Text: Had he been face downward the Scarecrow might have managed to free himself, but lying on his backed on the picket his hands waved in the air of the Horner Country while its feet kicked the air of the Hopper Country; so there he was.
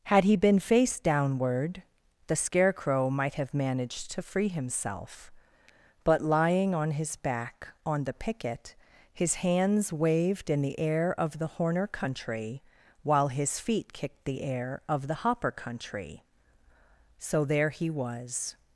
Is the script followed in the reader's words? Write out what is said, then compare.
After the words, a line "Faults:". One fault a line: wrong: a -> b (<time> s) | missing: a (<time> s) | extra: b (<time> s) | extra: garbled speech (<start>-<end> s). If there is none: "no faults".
Had he been face downward the Scarecrow might have managed to free himself, but lying on his back on the picket his hands waved in the air of the Horner Country while his feet kicked the air of the Hopper Country; so there he was.
Faults:
wrong: backed -> back (7.2 s)
wrong: its -> his (13.3 s)